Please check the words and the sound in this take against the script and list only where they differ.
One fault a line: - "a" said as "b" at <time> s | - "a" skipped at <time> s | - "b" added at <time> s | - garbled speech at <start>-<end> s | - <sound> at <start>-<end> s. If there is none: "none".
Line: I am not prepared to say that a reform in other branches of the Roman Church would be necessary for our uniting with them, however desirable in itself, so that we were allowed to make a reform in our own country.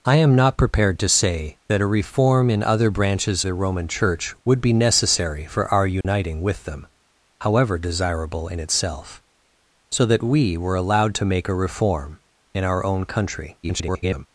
- "of" skipped at 3.5 s
- dropout at 6.0-6.0 s
- garbled speech at 13.6-14.3 s